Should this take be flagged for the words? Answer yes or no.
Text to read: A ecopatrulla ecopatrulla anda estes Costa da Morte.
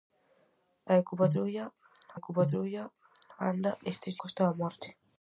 no